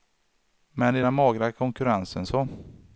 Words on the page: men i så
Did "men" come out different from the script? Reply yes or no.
no